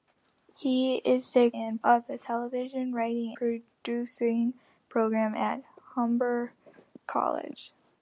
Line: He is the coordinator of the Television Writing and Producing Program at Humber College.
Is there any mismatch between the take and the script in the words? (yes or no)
yes